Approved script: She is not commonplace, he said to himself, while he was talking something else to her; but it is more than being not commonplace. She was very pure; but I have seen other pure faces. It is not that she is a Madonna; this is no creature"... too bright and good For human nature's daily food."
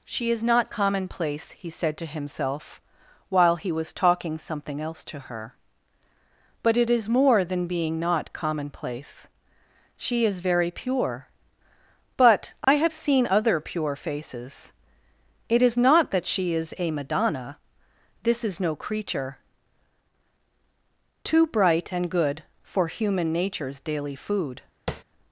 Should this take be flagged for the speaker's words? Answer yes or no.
yes